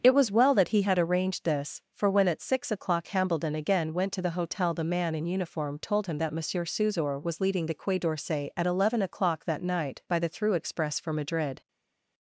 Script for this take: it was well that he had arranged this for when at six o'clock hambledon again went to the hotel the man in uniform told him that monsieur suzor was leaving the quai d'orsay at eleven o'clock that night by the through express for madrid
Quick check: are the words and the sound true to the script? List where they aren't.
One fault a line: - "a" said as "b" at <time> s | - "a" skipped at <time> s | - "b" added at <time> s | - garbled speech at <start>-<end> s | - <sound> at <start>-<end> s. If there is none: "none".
- "leaving" said as "leading" at 7.4 s